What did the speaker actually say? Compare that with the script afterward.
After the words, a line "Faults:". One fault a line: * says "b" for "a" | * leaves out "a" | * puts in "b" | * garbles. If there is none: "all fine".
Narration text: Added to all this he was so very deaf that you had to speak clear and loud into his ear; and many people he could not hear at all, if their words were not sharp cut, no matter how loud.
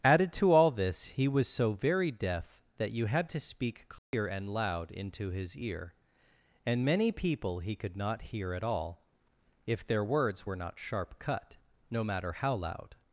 Added to all this he was so very deaf that you had to speak clear and loud into his ear; and many people he could not hear at all, if their words were not sharp cut, no matter how loud.
Faults:
all fine